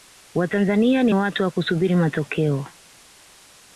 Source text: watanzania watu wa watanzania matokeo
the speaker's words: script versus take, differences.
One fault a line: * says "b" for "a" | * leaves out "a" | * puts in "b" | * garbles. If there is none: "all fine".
* puts in "ni"
* says "kusubiri" for "watanzania"